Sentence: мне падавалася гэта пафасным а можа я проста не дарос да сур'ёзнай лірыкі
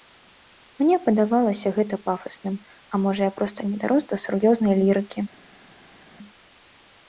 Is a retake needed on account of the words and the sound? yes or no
no